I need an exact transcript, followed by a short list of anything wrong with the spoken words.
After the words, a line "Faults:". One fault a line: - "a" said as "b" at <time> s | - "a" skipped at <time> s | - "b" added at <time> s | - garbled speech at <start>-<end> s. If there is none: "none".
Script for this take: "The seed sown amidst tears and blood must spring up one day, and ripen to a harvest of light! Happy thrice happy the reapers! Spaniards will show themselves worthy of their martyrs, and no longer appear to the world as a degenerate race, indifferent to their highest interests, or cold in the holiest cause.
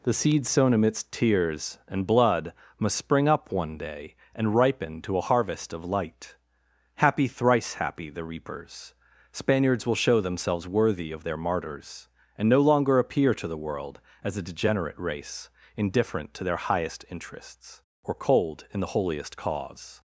"The seed sown amidst tears and blood must spring up one day, and ripen to a harvest of light! Happy thrice happy the reapers! Spaniards will show themselves worthy of their martyrs, and no longer appear to the world as a degenerate race, indifferent to their highest interests, or cold in the holiest cause.
Faults:
none